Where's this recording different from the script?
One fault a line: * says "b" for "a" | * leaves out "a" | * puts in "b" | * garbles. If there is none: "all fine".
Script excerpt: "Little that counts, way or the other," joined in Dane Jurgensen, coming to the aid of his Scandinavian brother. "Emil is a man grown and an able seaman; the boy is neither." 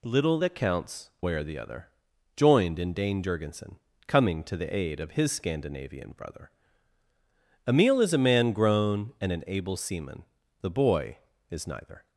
all fine